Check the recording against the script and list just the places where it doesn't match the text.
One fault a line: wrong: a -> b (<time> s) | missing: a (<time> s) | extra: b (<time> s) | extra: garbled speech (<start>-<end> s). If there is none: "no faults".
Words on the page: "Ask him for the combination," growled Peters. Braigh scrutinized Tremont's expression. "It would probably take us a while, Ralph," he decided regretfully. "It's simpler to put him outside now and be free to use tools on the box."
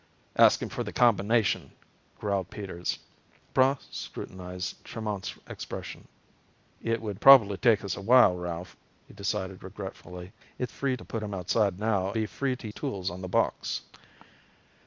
wrong: simpler -> free (10.7 s)
missing: and (12.1 s)
missing: use (12.7 s)